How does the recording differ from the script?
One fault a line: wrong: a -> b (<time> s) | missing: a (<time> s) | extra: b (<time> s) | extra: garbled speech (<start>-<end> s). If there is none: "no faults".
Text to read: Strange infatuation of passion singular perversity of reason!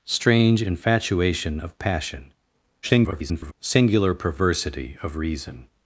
extra: garbled speech (2.8-3.5 s)